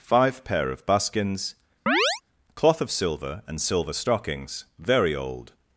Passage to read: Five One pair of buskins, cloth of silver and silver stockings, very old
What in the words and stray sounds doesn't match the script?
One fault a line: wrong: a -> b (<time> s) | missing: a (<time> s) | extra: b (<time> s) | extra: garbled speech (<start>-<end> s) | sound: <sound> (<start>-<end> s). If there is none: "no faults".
missing: One (0.4 s)
sound: chirp (1.9-2.2 s)